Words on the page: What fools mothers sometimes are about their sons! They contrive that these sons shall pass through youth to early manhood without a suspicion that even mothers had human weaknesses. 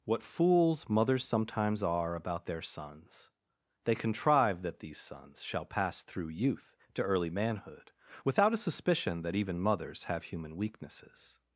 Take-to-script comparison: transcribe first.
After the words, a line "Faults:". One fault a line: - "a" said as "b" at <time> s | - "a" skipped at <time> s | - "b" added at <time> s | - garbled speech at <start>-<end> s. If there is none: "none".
What fools mothers sometimes are about their sons! They contrive that these sons shall pass through youth to early manhood without a suspicion that even mothers have human weaknesses.
Faults:
- "had" said as "have" at 10.1 s